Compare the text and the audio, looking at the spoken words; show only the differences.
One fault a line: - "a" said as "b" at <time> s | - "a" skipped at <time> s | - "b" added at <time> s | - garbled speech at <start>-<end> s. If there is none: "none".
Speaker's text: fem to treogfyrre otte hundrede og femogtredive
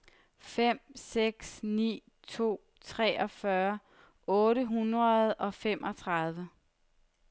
- "seks ni" added at 0.9 s